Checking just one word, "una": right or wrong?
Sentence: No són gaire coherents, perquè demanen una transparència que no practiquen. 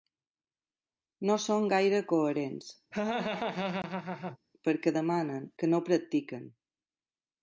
wrong